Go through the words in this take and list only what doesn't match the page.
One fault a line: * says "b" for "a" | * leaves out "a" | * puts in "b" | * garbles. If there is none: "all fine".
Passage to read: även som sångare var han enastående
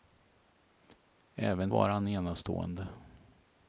* leaves out "som sångare"